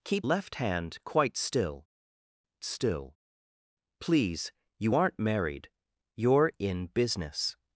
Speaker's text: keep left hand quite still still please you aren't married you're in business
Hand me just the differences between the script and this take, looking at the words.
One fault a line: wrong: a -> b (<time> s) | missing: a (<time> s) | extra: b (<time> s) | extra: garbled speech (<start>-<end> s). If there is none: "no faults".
no faults